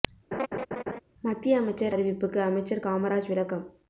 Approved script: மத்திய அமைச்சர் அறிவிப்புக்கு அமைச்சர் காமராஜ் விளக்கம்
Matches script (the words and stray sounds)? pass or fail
fail